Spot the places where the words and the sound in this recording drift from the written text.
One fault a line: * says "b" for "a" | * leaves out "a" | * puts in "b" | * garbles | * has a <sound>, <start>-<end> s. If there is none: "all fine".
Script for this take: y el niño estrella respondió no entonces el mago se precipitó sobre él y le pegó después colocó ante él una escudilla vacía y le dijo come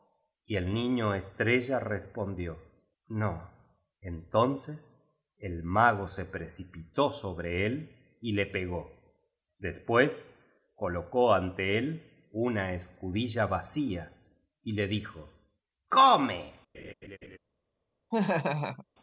* has a laugh, 16.7-17.4 s
* has a laugh, 18.1-18.9 s